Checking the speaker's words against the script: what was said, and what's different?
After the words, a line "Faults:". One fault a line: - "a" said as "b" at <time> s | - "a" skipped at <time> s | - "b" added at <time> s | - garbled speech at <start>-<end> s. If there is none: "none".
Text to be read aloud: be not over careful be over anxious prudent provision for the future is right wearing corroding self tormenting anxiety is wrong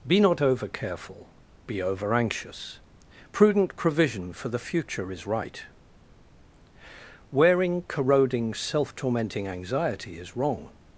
be not over careful be over anxious prudent provision for the future is right wearing corroding self tormenting anxiety is wrong
Faults:
none